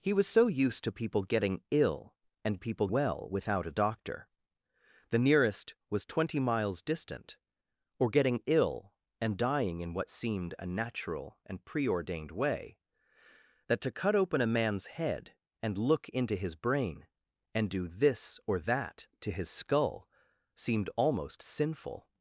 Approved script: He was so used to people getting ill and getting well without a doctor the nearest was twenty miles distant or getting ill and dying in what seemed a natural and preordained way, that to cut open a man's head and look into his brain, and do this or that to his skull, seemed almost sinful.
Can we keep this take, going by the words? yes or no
no